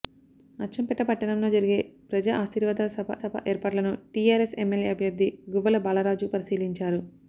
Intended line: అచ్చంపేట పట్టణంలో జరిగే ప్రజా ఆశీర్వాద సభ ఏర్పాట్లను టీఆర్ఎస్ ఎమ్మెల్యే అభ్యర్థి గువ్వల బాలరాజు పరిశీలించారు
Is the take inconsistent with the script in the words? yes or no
yes